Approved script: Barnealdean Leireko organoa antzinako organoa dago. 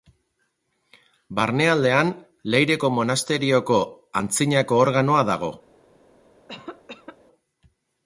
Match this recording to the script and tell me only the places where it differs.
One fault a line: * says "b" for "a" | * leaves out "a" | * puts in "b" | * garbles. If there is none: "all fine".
* says "monasterioko" for "organoa"